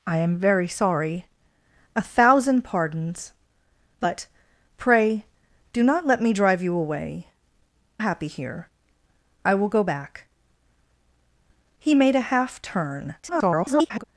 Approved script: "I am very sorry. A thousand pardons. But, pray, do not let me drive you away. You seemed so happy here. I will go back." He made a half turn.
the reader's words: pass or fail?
fail